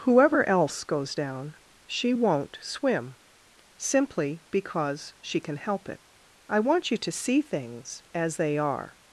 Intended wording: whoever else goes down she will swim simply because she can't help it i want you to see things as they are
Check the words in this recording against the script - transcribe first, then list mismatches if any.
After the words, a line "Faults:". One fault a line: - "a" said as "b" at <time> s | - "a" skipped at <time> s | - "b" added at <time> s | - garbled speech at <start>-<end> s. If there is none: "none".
whoever else goes down she won't swim simply because she can help it i want you to see things as they are
Faults:
- "will" said as "won't" at 2.1 s
- "can't" said as "can" at 5.4 s